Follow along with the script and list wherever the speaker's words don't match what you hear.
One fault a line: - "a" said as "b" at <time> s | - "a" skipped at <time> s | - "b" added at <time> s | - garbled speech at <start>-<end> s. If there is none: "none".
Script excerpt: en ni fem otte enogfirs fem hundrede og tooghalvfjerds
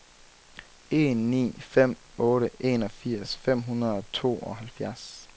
none